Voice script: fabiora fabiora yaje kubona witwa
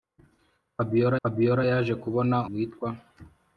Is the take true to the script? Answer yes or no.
yes